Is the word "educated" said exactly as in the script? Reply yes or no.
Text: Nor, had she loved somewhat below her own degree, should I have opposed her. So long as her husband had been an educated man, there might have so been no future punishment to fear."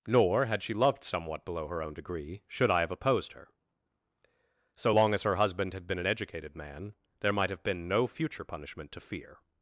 yes